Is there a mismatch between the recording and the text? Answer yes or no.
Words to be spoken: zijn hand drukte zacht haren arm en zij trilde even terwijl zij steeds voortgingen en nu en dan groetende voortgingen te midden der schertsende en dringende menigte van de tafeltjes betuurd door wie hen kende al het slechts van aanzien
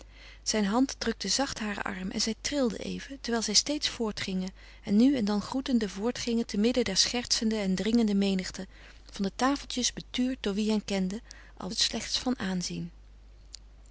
no